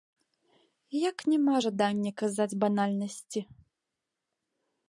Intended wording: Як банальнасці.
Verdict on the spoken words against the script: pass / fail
fail